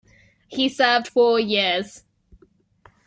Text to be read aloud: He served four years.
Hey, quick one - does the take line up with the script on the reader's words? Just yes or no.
yes